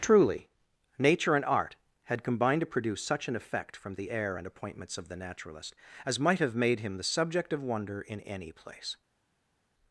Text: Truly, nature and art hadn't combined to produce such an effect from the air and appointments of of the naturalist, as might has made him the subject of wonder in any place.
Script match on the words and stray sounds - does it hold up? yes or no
no